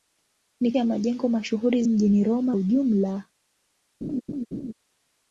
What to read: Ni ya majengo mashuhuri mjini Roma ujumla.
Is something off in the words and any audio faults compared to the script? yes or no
yes